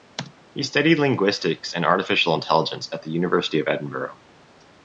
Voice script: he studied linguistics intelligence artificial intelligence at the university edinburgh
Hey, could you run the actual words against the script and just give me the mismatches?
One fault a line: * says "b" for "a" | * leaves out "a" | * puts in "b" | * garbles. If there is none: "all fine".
* says "and" for "intelligence"
* puts in "of"